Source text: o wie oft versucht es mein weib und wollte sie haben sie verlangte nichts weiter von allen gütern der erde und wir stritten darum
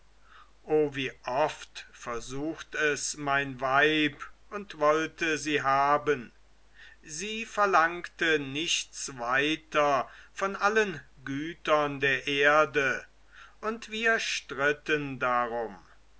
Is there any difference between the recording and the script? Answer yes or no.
no